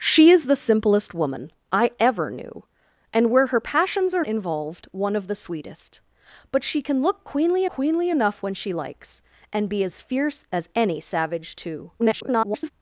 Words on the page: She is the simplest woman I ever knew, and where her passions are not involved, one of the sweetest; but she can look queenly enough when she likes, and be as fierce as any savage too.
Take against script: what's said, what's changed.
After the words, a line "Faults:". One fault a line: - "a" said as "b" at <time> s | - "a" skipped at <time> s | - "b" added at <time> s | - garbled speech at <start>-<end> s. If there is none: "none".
She is the simplest woman I ever knew, and where her passions are involved, one of the sweetest; but she can look queenly queenly enough when she likes, and be as fierce as any savage too. [garbled]
Faults:
- "not" skipped at 4.2 s
- "queenly" added at 7.7 s
- garbled speech at 12.0-12.7 s